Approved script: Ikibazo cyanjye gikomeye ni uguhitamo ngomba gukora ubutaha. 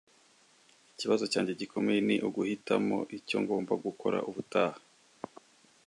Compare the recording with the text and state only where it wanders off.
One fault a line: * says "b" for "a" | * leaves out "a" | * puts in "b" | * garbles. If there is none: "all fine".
* puts in "icyo"